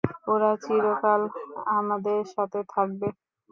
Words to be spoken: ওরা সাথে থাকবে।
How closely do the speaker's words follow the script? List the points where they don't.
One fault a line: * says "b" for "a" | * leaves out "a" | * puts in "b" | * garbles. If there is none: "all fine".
* puts in "চিরকাল আমাদের"